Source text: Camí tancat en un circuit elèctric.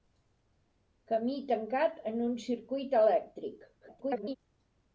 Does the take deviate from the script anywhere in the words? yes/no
yes